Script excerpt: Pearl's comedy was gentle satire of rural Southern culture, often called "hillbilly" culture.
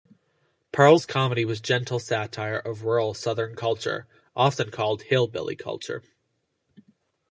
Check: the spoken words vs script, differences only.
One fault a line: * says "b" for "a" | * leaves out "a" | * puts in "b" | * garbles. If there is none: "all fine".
all fine